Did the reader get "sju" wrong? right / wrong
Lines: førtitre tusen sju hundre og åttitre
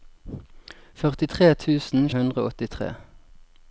wrong